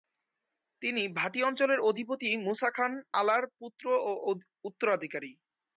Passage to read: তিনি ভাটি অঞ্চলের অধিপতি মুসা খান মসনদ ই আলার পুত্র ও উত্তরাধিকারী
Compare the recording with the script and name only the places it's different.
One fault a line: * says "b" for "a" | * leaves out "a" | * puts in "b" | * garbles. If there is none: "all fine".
* leaves out "মসনদ ই"